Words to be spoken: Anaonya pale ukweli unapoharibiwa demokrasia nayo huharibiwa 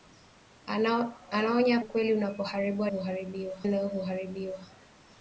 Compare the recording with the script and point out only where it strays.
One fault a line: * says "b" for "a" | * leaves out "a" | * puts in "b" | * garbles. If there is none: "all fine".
* leaves out "pale"
* says "huharibiwa" for "demokrasia"